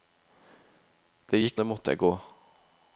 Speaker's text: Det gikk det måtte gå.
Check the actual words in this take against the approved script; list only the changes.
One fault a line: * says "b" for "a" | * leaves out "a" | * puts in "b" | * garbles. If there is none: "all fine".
all fine